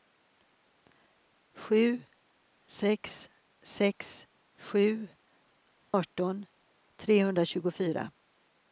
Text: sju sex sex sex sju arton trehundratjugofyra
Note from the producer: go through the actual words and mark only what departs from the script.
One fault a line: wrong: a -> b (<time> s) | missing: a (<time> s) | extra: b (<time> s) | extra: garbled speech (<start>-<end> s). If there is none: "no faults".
missing: sex (4.3 s)